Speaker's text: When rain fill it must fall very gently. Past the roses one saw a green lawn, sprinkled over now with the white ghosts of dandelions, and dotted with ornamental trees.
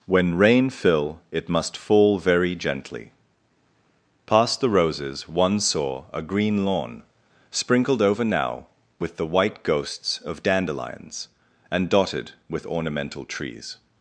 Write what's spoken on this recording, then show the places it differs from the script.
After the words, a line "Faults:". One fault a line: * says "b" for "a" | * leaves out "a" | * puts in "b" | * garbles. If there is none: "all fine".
When rain fill it must fall very gently. Past the roses one saw a green lawn, sprinkled over now with the white ghosts of dandelions, and dotted with ornamental trees.
Faults:
all fine